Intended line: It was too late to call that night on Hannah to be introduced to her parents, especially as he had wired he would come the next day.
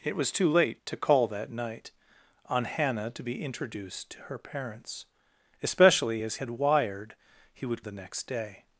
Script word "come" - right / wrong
wrong